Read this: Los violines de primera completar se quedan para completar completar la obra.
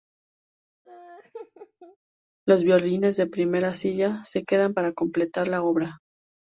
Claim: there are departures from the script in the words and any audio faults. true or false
true